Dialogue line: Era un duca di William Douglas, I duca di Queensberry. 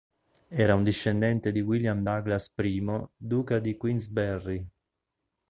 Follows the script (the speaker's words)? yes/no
no